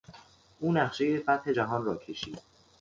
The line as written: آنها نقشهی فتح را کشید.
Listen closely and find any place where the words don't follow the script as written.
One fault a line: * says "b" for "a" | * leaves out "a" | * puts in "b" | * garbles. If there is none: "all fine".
* says "او" for "آنها"
* puts in "جهان"